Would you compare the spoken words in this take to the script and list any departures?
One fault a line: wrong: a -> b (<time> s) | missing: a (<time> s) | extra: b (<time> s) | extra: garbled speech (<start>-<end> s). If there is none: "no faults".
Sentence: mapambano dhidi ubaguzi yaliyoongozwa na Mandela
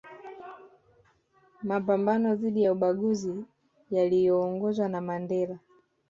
extra: ya (2.6 s)